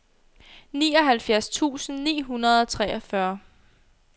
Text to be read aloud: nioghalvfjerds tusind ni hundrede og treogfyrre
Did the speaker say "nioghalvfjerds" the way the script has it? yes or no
yes